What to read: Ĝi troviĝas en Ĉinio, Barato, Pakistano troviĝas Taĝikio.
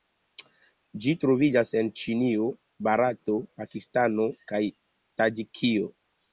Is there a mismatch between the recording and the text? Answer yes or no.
yes